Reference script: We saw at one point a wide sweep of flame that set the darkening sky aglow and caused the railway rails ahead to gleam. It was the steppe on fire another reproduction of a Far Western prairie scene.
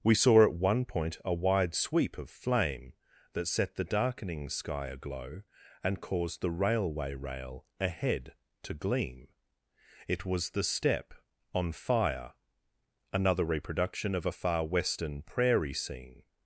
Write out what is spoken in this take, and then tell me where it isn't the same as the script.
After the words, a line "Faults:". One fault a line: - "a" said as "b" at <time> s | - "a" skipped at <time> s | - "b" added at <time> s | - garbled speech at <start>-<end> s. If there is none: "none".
We saw at one point a wide sweep of flame that set the darkening sky aglow and caused the railway rail ahead to gleam. It was the steppe on fire another reproduction of a Far Western prairie scene.
Faults:
- "rails" said as "rail" at 7.1 s